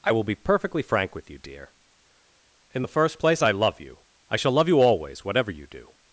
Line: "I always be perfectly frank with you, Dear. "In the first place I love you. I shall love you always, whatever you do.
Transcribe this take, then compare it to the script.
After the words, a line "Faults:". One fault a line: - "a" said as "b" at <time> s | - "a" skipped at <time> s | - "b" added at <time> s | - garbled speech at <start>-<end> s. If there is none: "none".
"I will be perfectly frank with you, Dear. "In the first place I love you. I shall love you always, whatever you do.
Faults:
- "always" said as "will" at 0.1 s